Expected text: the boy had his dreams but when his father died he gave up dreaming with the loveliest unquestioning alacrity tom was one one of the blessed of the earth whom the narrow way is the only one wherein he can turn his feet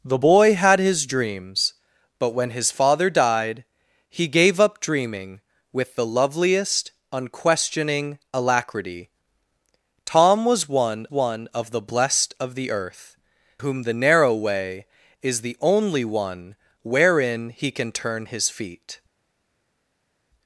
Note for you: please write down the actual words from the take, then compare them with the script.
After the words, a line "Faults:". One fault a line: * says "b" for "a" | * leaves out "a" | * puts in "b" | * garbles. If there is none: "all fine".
the boy had his dreams but when his father died he gave up dreaming with the loveliest unquestioning alacrity tom was one one of the blessed of the earth whom the narrow way is the only one wherein he can turn his feet
Faults:
all fine